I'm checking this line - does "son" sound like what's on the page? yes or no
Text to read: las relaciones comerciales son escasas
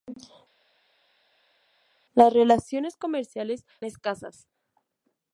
no